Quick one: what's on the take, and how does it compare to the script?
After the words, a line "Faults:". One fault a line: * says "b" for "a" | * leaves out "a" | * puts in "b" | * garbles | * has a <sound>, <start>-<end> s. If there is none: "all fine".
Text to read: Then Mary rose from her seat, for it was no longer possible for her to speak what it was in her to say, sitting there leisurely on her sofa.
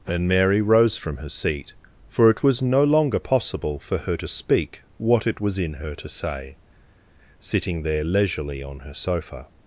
And Mary rose from her seat, for it was no longer possible for her to speak what it was in her to say, sitting there leisurely on her sofa.
Faults:
* says "And" for "Then"